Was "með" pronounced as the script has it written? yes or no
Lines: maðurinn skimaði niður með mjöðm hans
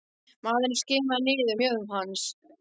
no